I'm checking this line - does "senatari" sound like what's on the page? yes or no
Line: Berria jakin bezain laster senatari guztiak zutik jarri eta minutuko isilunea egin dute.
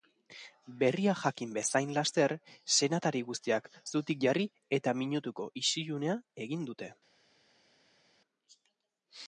yes